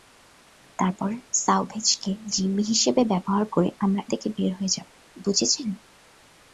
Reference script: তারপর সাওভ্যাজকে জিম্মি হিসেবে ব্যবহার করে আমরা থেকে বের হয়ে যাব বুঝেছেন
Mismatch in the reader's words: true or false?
false